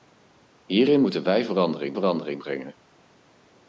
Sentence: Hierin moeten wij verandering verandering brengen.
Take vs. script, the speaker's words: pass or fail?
pass